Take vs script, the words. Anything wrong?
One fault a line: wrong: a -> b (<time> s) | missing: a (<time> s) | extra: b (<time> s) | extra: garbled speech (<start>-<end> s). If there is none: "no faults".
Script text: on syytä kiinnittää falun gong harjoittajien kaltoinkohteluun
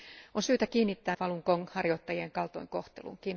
no faults